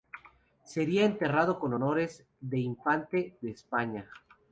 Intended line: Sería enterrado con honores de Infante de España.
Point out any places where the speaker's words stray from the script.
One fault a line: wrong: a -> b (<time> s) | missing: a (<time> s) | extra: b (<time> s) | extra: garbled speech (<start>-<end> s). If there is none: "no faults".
no faults